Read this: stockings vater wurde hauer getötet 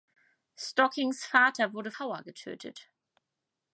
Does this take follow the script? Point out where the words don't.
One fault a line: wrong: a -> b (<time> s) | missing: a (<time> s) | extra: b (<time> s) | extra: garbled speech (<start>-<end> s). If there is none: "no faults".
no faults